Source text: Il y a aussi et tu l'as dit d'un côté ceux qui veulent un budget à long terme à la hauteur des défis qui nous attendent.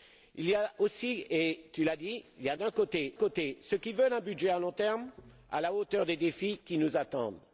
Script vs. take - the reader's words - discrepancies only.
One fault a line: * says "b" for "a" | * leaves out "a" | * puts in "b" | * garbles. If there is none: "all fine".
* puts in "côté"